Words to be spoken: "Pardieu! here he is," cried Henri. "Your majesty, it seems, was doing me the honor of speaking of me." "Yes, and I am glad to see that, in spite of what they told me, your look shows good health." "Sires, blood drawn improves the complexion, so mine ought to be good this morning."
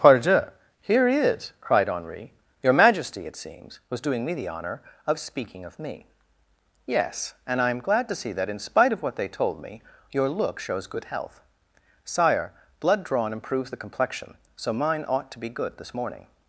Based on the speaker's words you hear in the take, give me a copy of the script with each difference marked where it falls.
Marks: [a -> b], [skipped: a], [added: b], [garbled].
"Pardieu! here he is," cried Henri. "Your majesty, it seems, was doing me the honor of speaking of me." "Yes, and I am glad to see that, in spite of what they told me, your look shows good health." ["Sires, -> Sire] blood drawn improves the complexion, so mine ought to be good this morning."